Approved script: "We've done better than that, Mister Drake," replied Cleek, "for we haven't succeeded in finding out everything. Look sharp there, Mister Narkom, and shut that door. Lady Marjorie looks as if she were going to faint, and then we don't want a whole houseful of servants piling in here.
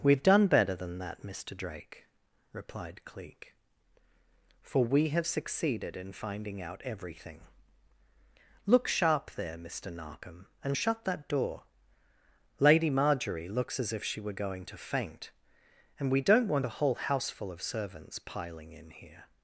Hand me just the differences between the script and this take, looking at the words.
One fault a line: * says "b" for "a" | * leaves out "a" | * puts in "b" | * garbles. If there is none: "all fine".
* says "have" for "haven't"
* leaves out "then"